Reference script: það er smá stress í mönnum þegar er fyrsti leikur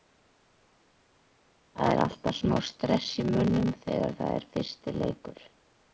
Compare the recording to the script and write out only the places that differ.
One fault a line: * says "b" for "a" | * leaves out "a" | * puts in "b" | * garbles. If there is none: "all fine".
* puts in "alltaf"
* puts in "það"